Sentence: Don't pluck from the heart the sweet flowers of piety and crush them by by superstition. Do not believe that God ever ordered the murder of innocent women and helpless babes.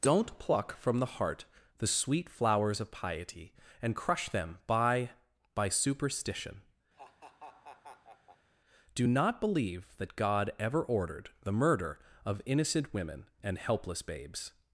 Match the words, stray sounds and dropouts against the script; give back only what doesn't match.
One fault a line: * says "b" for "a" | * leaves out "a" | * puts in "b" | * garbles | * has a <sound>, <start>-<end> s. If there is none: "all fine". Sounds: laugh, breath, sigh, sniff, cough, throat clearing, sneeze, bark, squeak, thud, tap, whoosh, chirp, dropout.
* has a laugh, 6.9-8.5 s